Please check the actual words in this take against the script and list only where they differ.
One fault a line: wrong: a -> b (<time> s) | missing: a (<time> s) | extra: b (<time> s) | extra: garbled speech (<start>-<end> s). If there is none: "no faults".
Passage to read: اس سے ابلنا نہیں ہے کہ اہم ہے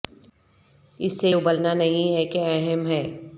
no faults